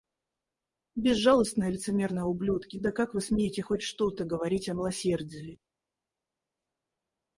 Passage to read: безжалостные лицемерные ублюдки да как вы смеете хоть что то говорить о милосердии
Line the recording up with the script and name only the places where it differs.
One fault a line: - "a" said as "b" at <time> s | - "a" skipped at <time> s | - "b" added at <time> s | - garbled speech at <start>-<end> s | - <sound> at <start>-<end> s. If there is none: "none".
none